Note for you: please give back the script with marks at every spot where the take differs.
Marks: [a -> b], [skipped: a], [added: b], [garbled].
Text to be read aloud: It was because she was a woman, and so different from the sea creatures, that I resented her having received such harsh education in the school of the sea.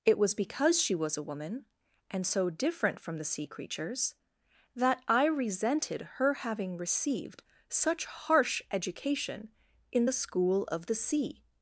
It was because she was a woman, and so different from the sea creatures, that I resented her having received such harsh education in the school of the sea.